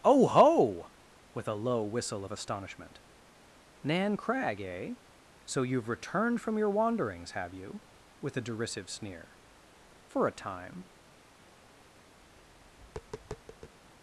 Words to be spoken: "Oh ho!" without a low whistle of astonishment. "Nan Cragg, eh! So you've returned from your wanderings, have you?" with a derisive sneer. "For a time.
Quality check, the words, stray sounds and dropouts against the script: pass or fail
fail